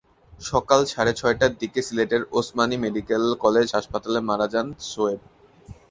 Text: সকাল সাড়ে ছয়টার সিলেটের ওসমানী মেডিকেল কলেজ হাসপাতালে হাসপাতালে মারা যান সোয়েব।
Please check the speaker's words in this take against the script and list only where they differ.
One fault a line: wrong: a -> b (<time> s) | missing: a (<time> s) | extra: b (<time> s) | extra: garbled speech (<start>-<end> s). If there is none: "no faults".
extra: দিকে (1.6 s)
missing: হাসপাতালে (4.2 s)